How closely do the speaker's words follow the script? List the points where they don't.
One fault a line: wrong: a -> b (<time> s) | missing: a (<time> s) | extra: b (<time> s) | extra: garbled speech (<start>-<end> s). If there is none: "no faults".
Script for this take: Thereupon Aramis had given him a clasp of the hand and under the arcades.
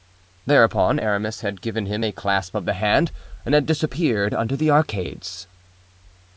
extra: had disappeared (3.5 s)